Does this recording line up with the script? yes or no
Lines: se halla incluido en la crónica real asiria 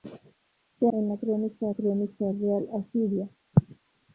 no